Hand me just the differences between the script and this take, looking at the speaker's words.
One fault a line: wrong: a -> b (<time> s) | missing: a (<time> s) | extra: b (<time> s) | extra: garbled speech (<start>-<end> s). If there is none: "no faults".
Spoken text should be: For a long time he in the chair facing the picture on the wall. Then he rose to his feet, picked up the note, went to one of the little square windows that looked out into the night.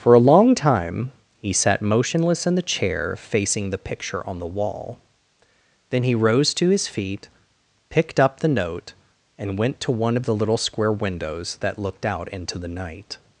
extra: sat motionless (1.5 s)
extra: and (9.4 s)